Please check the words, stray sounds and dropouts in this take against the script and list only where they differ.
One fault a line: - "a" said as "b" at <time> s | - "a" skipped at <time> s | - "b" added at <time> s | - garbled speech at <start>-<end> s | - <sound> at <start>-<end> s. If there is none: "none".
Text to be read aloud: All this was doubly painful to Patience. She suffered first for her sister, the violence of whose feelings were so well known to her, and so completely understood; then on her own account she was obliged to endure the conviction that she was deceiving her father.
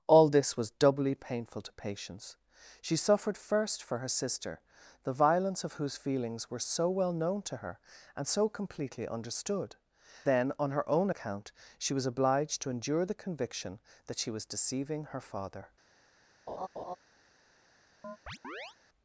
- laugh at 16.5-17.0 s
- chirp at 18.0-18.8 s